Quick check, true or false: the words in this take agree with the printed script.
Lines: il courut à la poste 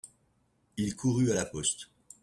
true